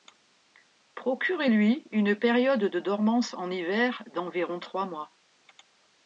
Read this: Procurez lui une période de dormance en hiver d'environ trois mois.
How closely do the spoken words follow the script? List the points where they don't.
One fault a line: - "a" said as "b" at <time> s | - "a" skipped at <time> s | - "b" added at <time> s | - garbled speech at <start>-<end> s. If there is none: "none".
none